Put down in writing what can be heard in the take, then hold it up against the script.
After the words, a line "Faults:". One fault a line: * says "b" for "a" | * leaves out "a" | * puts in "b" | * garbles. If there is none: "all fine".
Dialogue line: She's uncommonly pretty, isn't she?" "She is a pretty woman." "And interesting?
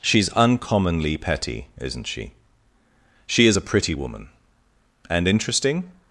She's uncommonly petty, isn't she?" "She is a pretty woman." "And interesting?
Faults:
* says "petty" for "pretty"